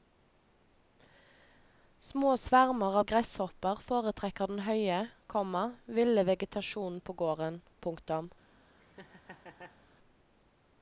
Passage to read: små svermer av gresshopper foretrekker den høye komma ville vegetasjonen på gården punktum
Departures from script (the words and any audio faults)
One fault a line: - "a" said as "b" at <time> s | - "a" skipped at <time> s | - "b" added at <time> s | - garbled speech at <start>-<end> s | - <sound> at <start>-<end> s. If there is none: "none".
- laugh at 8.8-9.8 s